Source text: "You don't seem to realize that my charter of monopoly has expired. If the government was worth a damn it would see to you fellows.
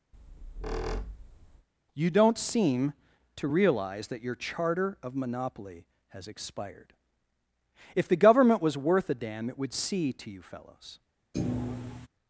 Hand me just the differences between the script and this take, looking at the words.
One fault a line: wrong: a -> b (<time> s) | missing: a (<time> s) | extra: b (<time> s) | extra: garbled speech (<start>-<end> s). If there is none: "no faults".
wrong: my -> your (4.2 s)